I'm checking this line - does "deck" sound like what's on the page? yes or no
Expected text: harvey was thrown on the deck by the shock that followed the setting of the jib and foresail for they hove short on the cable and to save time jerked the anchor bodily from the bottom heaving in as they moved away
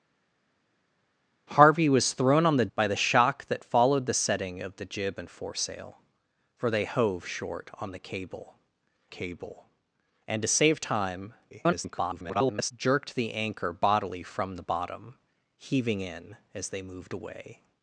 no